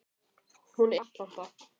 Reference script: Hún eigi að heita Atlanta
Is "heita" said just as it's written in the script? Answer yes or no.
no